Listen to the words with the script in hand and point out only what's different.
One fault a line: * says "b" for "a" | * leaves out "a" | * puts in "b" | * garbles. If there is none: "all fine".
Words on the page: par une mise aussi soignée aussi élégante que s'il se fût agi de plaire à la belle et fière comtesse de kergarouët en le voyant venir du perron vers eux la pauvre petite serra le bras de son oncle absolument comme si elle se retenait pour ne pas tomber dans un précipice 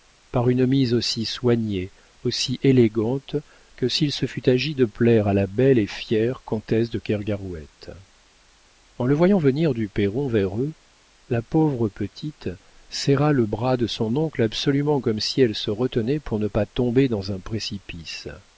all fine